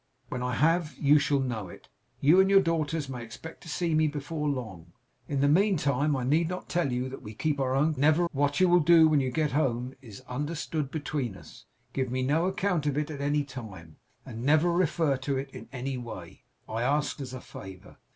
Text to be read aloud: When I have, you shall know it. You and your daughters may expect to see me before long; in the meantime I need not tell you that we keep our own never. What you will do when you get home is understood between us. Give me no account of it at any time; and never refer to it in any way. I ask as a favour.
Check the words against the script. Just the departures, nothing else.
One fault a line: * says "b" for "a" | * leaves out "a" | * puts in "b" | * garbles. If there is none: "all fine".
all fine